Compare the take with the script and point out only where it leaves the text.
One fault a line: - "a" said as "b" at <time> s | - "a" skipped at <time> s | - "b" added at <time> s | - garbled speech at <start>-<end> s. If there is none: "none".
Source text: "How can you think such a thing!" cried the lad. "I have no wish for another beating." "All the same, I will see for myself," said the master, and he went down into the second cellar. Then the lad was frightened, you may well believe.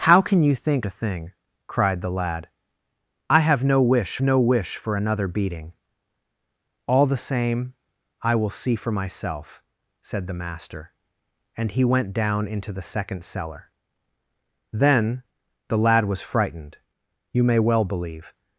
- "such" skipped at 0.9 s
- "no wish" added at 4.2 s